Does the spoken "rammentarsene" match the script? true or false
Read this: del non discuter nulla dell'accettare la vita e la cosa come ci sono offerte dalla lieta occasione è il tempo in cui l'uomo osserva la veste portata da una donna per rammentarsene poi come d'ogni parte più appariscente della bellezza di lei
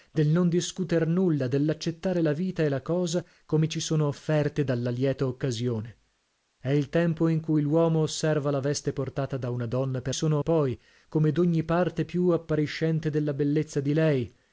false